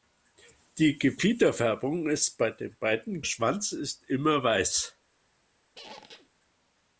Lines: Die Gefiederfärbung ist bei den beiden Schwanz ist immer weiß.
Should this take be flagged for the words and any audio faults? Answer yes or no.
yes